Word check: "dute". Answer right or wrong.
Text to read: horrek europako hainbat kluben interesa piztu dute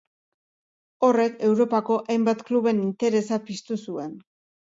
wrong